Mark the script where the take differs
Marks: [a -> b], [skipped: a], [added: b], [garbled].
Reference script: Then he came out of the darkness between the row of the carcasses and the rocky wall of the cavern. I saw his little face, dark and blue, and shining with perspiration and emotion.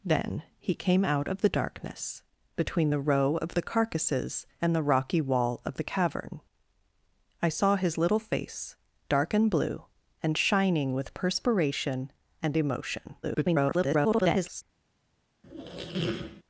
Then he came out of the darkness between the row of the carcasses and the rocky wall of the cavern. I saw his little face, dark and blue, and shining with perspiration and emotion. [garbled]